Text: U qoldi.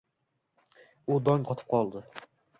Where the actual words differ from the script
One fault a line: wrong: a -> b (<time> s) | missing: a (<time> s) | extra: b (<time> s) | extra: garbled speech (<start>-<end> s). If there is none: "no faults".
extra: dong qotib (1.3 s)